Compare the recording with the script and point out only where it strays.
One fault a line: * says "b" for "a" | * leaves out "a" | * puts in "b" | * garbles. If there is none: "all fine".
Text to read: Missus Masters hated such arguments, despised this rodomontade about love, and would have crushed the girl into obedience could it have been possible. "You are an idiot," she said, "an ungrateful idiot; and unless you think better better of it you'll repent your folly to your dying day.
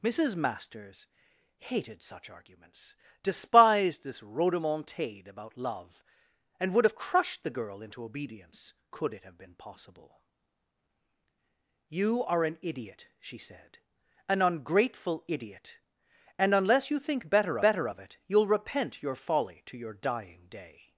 all fine